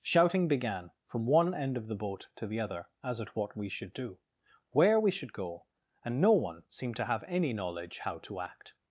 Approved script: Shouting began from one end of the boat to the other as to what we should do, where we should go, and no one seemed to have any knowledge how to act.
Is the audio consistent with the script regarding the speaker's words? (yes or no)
no